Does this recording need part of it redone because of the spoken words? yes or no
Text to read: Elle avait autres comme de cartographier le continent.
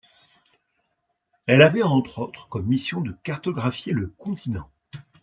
yes